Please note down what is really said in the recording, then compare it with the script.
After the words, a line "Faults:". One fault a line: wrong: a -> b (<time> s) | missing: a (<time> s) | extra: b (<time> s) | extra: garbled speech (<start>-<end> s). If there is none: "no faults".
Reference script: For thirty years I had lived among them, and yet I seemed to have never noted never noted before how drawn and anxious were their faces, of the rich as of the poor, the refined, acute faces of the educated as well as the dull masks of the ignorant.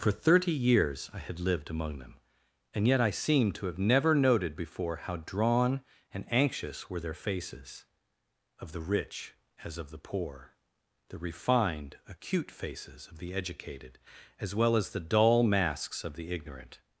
For thirty years I had lived among them, and yet I seemed to have never noted before how drawn and anxious were their faces, of the rich as of the poor, the refined, acute faces of the educated as well as the dull masks of the ignorant.
Faults:
missing: never noted (4.5 s)